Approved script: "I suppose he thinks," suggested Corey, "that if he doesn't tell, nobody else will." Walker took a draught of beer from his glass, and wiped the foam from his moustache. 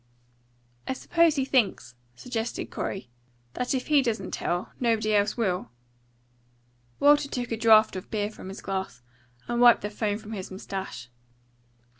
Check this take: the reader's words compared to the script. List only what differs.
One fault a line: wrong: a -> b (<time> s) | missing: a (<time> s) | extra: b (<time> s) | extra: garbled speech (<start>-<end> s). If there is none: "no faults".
no faults